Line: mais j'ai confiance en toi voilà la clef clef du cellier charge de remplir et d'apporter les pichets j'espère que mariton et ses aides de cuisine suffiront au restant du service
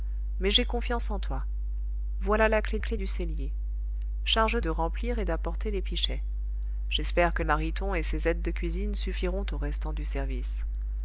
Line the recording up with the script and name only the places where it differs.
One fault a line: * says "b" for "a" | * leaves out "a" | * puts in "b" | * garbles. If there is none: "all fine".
all fine